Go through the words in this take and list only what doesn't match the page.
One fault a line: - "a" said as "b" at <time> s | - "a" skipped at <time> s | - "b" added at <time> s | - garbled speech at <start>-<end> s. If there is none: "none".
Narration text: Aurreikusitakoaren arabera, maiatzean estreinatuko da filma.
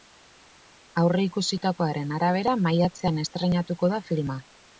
none